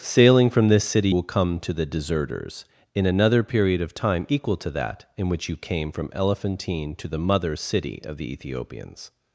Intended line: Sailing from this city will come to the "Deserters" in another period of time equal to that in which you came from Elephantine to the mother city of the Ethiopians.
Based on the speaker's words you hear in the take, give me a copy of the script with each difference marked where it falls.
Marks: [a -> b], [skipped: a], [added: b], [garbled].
Sailing from this city will come to the "Deserters" in another period of time equal to that in which you came from Elephantine to the mother city of the Ethiopians.